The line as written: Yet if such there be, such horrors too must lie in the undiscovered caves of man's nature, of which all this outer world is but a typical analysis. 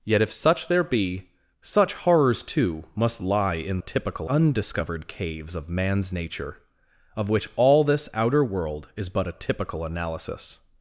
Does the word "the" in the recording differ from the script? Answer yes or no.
yes